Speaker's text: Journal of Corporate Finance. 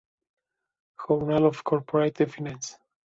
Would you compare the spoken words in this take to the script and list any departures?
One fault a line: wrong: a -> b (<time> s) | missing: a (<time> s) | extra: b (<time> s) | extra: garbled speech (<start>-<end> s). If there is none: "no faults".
no faults